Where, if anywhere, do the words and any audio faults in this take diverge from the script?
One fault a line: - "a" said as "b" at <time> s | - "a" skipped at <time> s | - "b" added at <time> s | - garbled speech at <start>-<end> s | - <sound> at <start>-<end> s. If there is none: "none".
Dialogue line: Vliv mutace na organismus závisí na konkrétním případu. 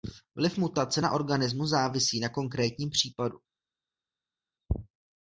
none